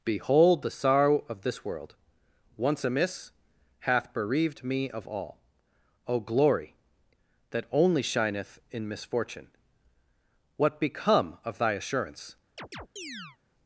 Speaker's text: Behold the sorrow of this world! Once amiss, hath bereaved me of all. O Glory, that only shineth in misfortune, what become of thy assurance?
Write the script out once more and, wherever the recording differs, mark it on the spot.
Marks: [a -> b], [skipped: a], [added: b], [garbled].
Behold the sorrow of this world! Once amiss, hath bereaved me of all. O Glory, that only shineth in misfortune, what become of thy assurance?